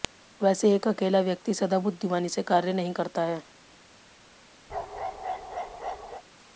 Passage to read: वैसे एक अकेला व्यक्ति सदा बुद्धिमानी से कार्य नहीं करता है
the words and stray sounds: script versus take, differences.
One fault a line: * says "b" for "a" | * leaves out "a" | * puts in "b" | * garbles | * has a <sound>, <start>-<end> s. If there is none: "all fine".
* has a bark, 4.7-6.2 s